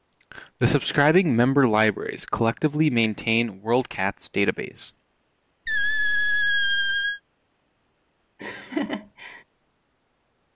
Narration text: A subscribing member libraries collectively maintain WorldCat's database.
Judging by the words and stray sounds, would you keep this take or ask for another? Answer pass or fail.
fail